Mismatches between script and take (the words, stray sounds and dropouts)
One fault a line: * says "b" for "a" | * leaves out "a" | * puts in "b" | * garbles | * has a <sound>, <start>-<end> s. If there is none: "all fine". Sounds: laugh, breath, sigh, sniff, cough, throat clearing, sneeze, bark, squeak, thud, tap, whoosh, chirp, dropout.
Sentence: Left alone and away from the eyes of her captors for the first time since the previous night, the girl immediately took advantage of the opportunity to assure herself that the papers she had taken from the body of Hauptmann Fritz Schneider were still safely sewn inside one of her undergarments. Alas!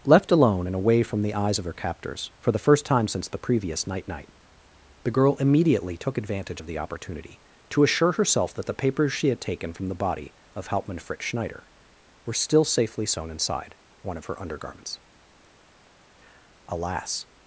* puts in "night"